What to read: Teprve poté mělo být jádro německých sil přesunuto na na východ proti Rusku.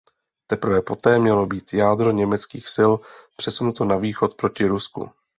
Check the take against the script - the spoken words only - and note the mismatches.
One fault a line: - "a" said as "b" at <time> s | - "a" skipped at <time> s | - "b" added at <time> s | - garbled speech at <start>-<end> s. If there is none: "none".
- "na" skipped at 4.0 s